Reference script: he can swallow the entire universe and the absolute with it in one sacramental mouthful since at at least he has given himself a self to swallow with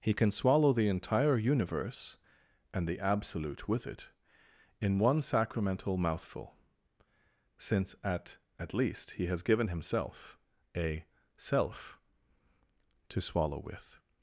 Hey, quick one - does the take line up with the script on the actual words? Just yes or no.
yes